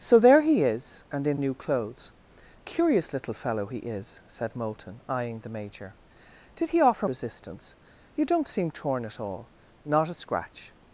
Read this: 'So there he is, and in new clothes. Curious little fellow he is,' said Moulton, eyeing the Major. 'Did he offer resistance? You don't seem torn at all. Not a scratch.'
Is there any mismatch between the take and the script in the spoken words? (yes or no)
no